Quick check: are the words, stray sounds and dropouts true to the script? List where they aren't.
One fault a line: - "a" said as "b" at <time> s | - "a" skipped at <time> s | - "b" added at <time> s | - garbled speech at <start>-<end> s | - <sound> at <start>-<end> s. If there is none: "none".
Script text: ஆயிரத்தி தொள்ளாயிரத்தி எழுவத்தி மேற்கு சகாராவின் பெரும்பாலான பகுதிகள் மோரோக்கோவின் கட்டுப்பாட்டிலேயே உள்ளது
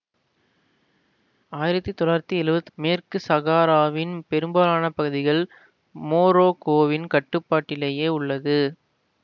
none